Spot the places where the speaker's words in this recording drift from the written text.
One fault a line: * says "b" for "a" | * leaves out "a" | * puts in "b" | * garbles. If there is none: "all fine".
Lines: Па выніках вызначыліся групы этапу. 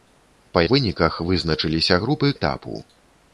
all fine